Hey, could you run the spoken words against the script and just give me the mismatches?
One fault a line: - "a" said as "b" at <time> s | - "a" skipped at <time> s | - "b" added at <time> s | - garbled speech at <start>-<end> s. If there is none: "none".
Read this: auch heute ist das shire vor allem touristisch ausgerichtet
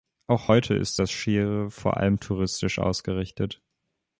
none